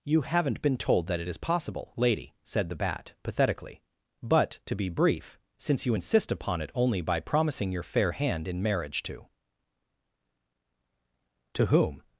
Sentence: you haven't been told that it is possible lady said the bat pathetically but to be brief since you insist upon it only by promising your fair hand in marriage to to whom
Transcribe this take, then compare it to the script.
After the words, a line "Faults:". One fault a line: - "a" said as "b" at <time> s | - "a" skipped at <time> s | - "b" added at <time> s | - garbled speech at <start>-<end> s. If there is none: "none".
you haven't been told that it is possible lady said the bat pathetically but to be brief since you insist upon it only by promising your fair hand in marriage to to whom
Faults:
none